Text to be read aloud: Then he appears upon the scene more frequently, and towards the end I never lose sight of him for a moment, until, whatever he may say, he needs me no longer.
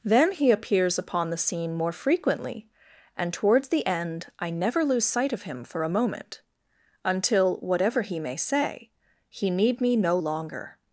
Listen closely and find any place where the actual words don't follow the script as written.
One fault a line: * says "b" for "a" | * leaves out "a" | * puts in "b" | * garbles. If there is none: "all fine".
* says "need" for "needs"